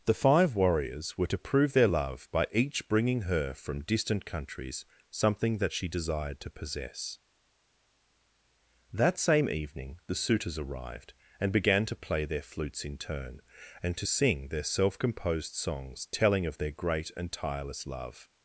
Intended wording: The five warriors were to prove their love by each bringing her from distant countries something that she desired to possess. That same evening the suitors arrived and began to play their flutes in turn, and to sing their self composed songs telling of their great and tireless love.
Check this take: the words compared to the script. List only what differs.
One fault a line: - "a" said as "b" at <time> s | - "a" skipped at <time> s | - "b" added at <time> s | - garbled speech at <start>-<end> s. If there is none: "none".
none